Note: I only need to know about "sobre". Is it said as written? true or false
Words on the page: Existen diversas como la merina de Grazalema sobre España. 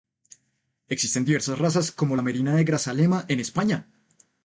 false